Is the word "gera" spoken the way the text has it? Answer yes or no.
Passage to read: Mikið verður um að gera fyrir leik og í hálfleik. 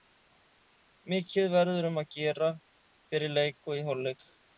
yes